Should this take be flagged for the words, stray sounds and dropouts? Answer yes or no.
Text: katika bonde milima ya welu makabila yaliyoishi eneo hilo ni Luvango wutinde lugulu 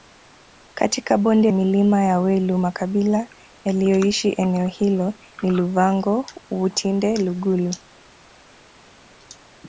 no